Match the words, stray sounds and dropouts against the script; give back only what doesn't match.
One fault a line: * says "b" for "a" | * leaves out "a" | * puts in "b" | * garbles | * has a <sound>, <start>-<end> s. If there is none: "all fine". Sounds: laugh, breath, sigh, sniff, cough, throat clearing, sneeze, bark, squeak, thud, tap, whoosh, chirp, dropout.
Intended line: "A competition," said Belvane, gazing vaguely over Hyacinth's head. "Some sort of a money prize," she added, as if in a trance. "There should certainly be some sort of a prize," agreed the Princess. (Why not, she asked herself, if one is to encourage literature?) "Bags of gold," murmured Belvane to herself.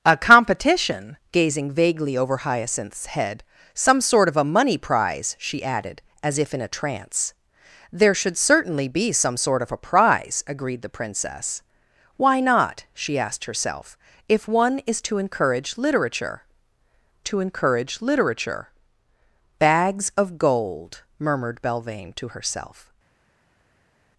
* leaves out "said Belvane"
* puts in "to encourage literature"